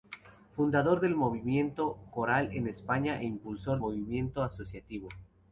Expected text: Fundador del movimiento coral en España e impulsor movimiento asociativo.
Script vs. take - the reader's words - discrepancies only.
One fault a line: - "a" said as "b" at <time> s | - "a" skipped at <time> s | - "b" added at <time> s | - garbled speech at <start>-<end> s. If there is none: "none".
none